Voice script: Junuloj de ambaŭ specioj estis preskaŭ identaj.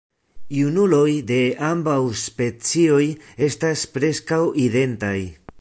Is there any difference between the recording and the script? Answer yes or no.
yes